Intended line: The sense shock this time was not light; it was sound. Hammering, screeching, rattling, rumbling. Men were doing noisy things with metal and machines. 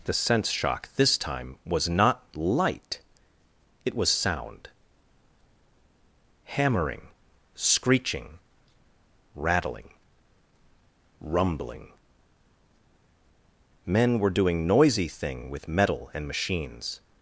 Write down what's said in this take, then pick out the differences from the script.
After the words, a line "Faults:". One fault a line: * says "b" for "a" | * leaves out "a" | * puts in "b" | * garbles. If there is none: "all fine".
The sense shock this time was not light; it was sound. Hammering, screeching, rattling, rumbling. Men were doing noisy thing with metal and machines.
Faults:
* says "thing" for "things"